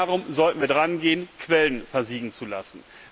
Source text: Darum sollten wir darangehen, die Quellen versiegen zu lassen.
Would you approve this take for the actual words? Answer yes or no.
no